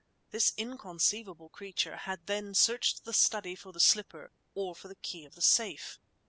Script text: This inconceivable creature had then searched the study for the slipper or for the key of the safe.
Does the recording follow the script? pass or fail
pass